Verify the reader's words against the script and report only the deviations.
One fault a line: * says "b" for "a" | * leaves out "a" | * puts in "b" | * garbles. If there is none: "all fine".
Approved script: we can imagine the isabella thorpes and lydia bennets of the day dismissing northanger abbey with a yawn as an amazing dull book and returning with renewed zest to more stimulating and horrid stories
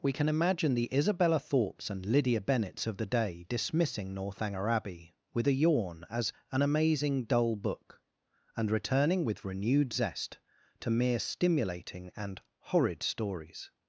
* says "mere" for "more"